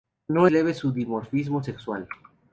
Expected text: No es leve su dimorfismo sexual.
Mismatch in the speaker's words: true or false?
true